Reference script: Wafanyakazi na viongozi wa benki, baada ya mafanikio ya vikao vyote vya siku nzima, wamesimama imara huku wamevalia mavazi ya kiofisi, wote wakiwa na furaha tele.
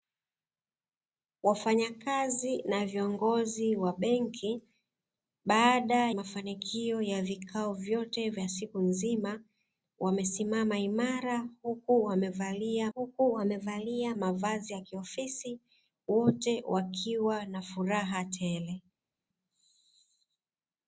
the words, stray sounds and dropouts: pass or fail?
fail